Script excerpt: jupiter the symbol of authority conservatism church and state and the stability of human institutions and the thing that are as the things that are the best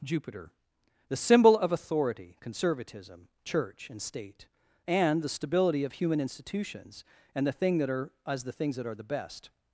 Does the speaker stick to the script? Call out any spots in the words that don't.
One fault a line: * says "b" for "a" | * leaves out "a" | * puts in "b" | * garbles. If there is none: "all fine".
all fine